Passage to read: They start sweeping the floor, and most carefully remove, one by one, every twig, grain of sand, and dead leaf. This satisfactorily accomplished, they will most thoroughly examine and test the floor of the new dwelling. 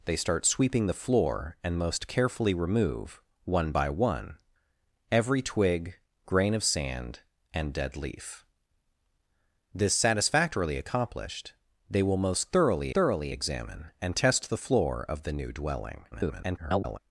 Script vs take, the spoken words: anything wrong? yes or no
yes